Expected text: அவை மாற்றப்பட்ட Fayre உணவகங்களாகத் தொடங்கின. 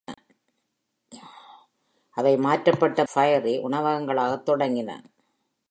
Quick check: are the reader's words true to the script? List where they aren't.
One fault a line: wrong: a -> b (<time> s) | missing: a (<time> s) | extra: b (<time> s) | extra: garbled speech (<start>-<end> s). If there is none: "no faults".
no faults